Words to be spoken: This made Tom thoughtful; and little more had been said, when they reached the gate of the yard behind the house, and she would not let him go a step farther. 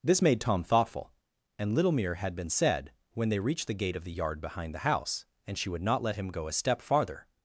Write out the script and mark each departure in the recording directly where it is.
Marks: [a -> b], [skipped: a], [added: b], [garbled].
This made Tom thoughtful; and little [more -> mere] had been said, when they reached the gate of the yard behind the house, and she would not let him go a step farther.